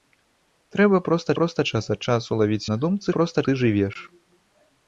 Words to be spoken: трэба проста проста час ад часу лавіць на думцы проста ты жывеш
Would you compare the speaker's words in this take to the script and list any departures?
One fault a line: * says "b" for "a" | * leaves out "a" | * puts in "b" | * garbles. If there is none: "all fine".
all fine